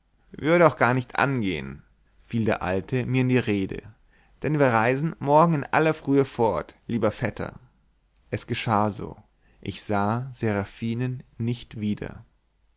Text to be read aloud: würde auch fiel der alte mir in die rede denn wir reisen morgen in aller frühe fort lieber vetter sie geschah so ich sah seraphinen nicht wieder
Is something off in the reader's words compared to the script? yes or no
yes